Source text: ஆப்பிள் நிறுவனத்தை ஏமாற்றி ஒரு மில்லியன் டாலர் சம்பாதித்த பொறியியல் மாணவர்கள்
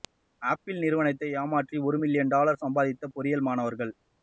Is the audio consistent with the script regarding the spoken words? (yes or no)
yes